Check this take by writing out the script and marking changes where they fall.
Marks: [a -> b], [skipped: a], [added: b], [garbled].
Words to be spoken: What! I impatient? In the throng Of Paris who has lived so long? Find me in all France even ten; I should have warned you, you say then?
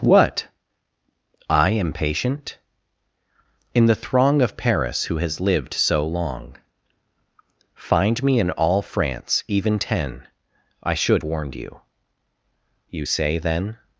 What! I impatient? In the throng Of Paris who has lived so long? Find me in all France even ten; I should [skipped: have] warned you, you say then?